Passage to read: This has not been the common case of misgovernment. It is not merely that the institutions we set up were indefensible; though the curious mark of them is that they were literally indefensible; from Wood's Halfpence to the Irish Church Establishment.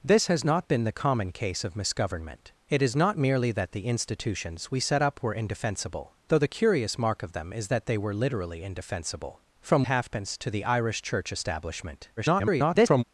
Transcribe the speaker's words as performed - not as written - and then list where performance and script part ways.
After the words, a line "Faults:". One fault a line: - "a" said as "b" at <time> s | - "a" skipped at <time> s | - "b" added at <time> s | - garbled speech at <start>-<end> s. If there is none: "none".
This has not been the common case of misgovernment. It is not merely that the institutions we set up were indefensible; though the curious mark of them is that they were literally indefensible; from Halfpence to the Irish Church Establishment. [garbled]
Faults:
- "Wood's" skipped at 9.8 s
- garbled speech at 12.2-13.0 s